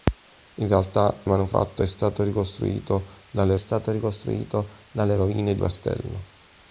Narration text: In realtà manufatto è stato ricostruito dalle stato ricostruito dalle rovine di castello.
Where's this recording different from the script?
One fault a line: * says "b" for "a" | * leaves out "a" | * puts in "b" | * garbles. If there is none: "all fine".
all fine